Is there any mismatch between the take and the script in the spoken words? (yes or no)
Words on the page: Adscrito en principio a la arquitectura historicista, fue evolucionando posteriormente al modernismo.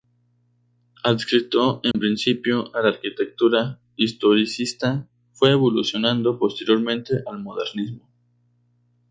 no